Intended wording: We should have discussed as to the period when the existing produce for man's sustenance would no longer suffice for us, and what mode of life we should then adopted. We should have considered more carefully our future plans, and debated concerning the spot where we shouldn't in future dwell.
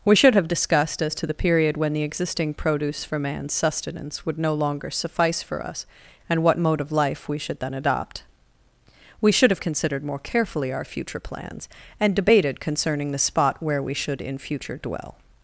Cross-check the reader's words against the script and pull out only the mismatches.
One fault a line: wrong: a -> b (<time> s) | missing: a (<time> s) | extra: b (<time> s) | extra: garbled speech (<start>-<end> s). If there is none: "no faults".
wrong: adopted -> adopt (7.7 s)
wrong: shouldn't -> should (13.9 s)